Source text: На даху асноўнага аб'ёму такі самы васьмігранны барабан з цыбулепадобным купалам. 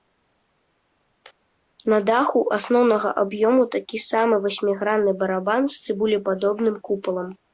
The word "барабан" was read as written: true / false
true